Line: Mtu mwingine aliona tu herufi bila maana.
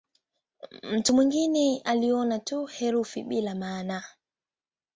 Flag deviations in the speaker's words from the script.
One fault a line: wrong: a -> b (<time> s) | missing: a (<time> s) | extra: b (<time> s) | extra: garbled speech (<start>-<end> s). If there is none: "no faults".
no faults